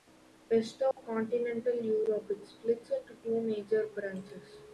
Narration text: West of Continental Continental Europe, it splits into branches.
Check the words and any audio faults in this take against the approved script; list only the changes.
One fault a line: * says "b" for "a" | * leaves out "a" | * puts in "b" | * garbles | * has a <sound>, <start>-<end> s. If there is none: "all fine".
* has a dropout, 0.9-1.0 s
* leaves out "Continental"
* puts in "two major"